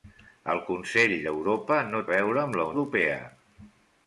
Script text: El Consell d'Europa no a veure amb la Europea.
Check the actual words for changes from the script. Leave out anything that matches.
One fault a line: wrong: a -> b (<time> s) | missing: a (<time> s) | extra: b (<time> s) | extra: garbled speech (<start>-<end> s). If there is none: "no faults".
no faults